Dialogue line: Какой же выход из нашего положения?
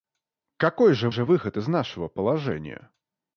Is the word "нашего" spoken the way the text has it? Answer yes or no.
yes